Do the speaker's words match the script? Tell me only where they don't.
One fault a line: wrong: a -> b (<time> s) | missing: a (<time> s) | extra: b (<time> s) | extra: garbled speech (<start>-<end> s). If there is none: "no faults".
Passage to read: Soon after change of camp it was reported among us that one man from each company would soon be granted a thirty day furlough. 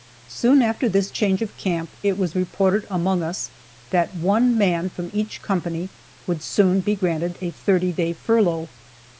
extra: this (0.9 s)